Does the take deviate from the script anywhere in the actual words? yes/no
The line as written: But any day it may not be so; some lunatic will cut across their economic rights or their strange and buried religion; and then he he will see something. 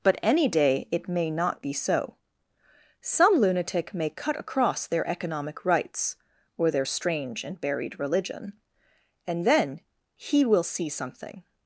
yes